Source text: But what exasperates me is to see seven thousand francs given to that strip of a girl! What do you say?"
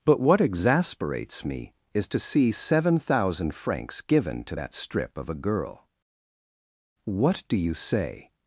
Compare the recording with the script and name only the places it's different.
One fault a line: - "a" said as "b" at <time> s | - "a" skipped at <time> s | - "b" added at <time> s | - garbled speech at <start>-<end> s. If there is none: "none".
none